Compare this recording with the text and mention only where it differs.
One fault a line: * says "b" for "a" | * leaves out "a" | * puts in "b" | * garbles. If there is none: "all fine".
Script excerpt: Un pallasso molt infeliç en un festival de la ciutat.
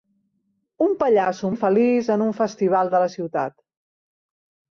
* leaves out "molt"